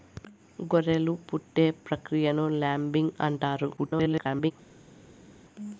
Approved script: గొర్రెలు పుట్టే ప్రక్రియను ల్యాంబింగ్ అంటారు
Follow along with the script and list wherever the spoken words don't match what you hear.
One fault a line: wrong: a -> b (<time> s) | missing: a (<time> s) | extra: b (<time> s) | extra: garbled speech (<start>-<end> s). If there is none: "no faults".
extra: garbled speech (3.8-4.5 s)